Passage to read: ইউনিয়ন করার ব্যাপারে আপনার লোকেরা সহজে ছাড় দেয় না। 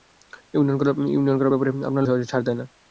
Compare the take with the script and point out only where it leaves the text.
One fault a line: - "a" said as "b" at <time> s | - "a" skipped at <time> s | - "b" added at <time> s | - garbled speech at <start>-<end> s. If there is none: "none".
- "লোকেরা" skipped at 2.0 s